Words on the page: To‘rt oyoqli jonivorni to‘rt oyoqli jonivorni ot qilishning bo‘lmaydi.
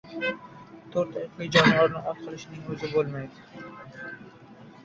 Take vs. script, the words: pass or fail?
fail